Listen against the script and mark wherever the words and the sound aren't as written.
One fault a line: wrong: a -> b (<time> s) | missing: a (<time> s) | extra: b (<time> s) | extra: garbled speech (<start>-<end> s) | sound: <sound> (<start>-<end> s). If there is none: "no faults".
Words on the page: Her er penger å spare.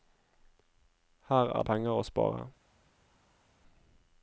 no faults